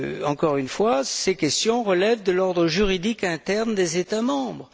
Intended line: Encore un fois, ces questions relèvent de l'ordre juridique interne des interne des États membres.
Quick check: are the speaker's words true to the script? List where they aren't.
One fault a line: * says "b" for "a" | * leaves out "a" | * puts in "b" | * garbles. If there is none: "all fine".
* says "une" for "un"
* leaves out "interne des"